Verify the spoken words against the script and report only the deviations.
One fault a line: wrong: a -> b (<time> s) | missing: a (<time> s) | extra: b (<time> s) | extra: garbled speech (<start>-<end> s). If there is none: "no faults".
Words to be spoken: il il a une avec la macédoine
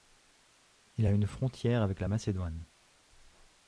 missing: il (1.1 s)
extra: frontière (1.2 s)